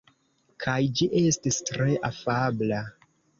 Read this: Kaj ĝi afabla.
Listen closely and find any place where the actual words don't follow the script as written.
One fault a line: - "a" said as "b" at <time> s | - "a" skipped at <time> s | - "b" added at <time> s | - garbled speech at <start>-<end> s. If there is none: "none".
- "estis tre" added at 1.2 s